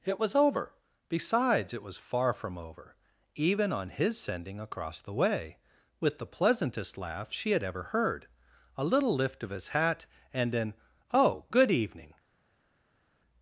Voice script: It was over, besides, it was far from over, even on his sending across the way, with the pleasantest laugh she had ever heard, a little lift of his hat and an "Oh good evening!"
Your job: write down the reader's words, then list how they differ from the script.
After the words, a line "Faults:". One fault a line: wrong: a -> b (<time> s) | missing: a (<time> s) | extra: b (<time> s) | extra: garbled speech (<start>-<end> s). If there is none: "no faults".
It was over, besides, it was far from over, even on his sending across the way, with the pleasantest laugh she had ever heard, a little lift of his hat and an "Oh good evening!"
Faults:
no faults